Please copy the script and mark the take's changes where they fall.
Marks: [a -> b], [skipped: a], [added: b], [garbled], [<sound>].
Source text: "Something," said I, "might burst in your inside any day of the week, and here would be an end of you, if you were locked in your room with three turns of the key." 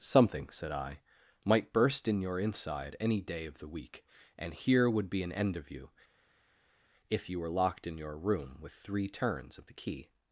"Something," said I, "might burst in your inside any day of the week, and here would be an end of you, if you were locked in your room with three turns of the key."